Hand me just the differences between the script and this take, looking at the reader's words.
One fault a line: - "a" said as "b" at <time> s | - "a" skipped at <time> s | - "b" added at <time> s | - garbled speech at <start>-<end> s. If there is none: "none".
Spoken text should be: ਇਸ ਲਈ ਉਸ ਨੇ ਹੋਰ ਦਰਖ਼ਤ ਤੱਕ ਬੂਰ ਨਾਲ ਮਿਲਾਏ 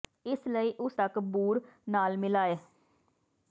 - "ਨੇ ਹੋਰ ਦਰਖ਼ਤ" skipped at 1.0 s